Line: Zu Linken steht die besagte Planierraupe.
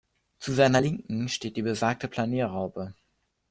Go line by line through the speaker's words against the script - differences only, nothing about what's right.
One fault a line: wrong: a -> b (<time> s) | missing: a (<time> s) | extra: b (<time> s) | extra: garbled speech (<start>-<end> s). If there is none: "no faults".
extra: seiner (0.5 s)